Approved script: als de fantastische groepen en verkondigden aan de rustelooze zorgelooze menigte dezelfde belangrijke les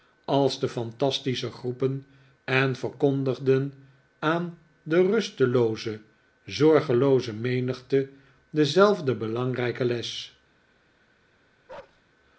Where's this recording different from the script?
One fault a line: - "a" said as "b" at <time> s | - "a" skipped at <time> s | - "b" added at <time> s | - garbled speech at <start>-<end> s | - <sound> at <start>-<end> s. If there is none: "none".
- bark at 11.7-12.0 s